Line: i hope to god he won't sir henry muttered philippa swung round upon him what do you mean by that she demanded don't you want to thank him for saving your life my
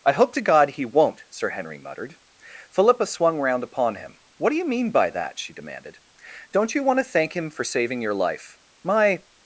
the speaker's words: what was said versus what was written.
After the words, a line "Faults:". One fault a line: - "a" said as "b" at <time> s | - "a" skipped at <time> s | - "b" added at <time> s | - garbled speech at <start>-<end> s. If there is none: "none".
i hope to god he won't sir henry muttered philippa swung round upon him what do you mean by that she demanded don't you want to thank him for saving your life my
Faults:
none